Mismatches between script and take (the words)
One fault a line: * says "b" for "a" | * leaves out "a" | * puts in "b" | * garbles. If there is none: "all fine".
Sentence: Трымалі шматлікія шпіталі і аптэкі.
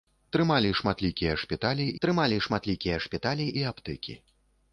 * puts in "трымалі шматлікія шпіталі"